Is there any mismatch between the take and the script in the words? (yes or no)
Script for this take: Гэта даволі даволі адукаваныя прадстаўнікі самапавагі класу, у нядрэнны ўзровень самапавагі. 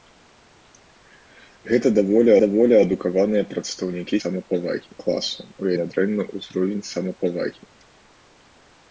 no